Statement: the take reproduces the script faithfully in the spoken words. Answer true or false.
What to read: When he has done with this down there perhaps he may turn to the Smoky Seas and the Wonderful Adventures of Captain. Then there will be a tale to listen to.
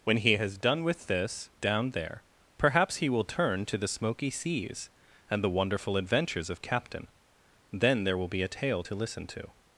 false